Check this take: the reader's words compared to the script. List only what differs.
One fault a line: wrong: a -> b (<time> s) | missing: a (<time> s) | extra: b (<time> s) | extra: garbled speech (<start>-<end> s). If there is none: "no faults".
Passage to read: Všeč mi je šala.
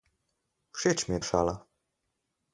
no faults